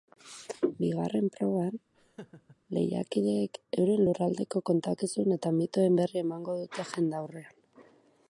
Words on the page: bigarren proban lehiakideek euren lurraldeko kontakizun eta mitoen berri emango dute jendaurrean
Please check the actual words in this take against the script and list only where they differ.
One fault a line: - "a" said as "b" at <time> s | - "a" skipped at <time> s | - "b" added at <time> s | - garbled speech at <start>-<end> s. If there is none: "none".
none